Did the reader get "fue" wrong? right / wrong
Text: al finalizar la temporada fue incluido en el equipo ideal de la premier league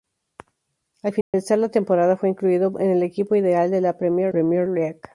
right